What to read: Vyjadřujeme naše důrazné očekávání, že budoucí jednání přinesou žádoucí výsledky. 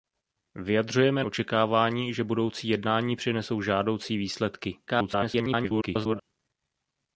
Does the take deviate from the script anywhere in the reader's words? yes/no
yes